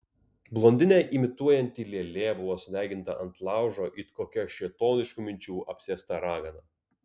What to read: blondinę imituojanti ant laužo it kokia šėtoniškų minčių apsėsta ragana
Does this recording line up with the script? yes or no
no